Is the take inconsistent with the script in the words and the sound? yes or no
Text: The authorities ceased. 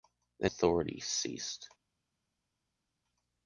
no